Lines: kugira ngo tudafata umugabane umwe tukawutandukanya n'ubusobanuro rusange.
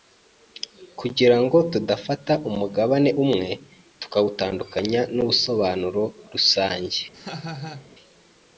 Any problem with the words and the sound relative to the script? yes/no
yes